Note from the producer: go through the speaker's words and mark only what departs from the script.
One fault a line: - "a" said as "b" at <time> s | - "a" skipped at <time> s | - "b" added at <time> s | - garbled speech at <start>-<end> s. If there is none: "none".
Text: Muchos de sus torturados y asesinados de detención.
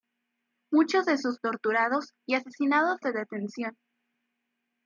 none